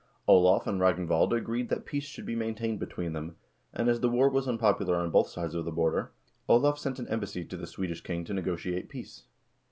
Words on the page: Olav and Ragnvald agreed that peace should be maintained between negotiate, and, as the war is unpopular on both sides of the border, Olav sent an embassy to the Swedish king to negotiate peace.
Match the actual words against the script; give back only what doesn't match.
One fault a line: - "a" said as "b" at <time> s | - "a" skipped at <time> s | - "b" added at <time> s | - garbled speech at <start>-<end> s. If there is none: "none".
- "negotiate" said as "them" at 3.1 s
- "is" said as "was" at 4.3 s